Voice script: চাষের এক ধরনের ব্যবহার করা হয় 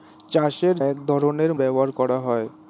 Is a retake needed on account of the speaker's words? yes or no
no